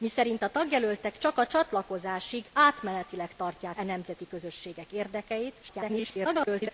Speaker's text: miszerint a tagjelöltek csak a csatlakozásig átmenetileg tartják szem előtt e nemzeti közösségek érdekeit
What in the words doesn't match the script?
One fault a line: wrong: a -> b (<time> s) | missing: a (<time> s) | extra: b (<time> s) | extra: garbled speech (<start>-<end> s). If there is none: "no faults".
missing: szem előtt (3.8 s)
extra: garbled speech (5.6-6.7 s)